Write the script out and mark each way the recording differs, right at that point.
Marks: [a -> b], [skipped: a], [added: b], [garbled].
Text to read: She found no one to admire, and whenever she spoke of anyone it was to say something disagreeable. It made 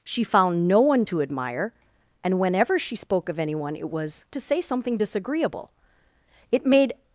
She found no one to admire, and whenever she spoke of anyone it was to say something disagreeable. It made